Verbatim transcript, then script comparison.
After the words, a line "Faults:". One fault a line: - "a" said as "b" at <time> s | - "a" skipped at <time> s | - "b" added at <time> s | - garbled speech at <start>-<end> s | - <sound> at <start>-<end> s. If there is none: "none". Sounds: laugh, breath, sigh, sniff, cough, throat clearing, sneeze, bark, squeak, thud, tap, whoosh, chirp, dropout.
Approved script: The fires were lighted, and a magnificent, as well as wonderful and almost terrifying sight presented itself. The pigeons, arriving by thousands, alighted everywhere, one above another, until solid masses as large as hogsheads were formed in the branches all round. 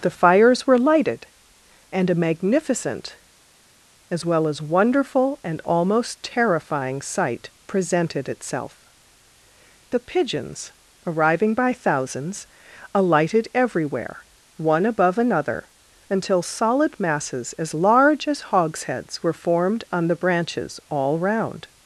The fires were lighted, and a magnificent, as well as wonderful and almost terrifying sight presented itself. The pigeons, arriving by thousands, alighted everywhere, one above another, until solid masses as large as hogsheads were formed on the branches all round.
Faults:
- "in" said as "on" at 19.9 s